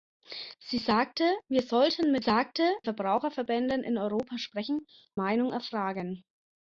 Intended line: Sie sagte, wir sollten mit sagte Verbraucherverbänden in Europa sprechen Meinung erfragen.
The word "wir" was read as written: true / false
true